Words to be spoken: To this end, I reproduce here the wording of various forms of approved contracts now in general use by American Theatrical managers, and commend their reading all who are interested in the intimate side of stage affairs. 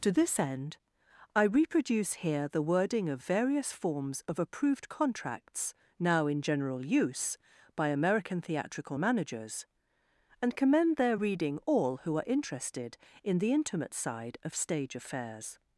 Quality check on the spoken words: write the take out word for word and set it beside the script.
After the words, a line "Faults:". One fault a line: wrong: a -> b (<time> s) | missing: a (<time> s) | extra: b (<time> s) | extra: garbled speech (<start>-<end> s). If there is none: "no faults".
To this end, I reproduce here the wording of various forms of approved contracts now in general use by American Theatrical managers, and commend their reading all who are interested in the intimate side of stage affairs.
Faults:
no faults